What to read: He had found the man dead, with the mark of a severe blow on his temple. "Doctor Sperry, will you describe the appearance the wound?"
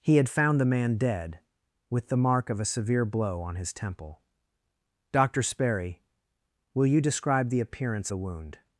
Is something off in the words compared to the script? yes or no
no